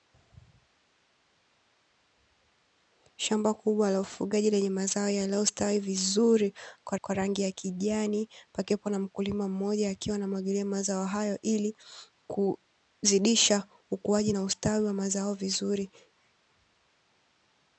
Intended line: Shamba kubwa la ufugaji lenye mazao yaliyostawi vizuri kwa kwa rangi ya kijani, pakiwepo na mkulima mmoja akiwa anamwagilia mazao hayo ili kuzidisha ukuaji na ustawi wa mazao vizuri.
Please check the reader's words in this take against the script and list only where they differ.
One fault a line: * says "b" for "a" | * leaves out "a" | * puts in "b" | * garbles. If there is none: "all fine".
all fine